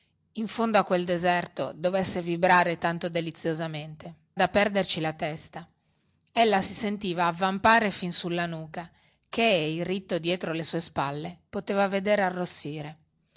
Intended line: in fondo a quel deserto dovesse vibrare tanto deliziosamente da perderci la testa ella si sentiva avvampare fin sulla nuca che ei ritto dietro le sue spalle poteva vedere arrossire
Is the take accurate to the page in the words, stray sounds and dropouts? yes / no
yes